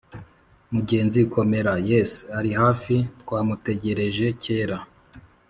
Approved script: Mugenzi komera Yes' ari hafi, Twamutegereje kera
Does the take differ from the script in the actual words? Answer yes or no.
no